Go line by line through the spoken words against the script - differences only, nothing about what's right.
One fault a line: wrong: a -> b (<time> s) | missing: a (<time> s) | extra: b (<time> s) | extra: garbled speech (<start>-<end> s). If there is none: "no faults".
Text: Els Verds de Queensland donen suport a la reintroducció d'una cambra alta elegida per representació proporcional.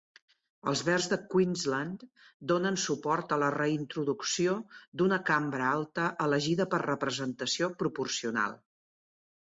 no faults